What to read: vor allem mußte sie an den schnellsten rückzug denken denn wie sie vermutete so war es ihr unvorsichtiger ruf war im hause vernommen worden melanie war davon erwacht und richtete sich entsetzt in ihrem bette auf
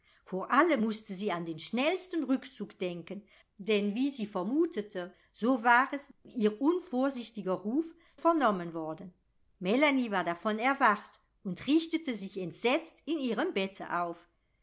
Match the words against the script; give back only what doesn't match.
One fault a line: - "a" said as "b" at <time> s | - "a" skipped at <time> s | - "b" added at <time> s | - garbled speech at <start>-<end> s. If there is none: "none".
- "war im hause" skipped at 8.0 s